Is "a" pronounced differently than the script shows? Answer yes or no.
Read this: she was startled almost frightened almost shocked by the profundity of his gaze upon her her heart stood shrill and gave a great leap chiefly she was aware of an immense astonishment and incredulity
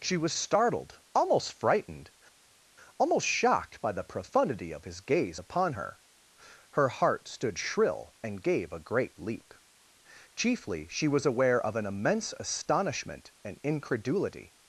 no